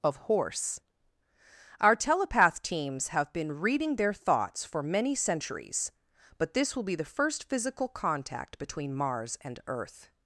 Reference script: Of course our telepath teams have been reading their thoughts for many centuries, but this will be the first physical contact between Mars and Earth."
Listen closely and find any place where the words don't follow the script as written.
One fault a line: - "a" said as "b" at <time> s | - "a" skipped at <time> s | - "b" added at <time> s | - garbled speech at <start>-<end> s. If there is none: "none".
- "course" said as "horse" at 0.2 s